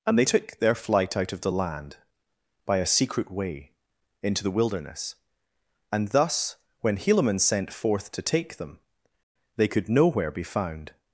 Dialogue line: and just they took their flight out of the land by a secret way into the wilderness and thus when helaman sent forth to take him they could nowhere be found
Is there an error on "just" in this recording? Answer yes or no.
yes